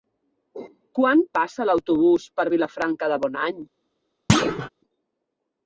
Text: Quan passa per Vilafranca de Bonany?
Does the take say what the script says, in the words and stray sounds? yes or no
no